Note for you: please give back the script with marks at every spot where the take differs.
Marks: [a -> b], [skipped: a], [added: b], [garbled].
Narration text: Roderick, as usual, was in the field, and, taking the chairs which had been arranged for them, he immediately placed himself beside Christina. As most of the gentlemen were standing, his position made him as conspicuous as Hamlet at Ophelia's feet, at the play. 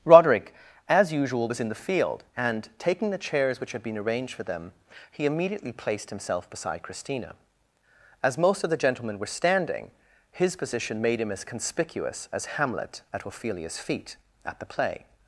Roderick, as usual, was in the field, and, taking the chairs which had been arranged for them, he immediately placed himself beside Christina. As most of the gentlemen were standing, his position made him as conspicuous as Hamlet at Ophelia's feet, at the play.